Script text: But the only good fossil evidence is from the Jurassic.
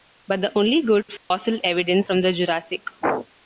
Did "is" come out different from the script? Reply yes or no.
yes